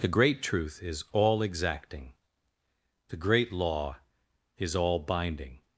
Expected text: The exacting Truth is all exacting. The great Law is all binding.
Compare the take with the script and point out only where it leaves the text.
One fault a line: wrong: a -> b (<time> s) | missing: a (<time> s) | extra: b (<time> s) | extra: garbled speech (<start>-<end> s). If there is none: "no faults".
wrong: exacting -> great (0.1 s)